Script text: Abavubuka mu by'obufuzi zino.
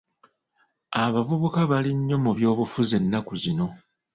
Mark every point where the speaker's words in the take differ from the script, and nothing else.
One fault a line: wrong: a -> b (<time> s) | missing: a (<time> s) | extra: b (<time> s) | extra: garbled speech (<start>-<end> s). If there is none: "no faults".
extra: bali nnyo (1.7 s)
extra: ennaku (3.0 s)